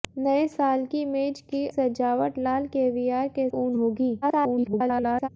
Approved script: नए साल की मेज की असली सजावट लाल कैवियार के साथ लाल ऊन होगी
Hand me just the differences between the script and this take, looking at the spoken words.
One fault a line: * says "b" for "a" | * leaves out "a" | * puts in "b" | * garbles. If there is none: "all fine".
* leaves out "असली"
* leaves out "साथ लाल"
* garbles